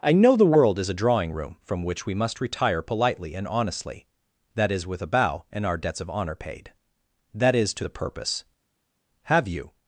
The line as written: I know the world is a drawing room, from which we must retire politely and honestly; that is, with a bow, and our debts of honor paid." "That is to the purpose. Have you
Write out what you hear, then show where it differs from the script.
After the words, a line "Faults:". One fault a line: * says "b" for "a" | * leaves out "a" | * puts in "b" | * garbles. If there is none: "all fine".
I know the world is a drawing room, from which we must retire politely and honestly; that is, with a bow, and our debts of honor paid." "That is to the purpose. Have you
Faults:
all fine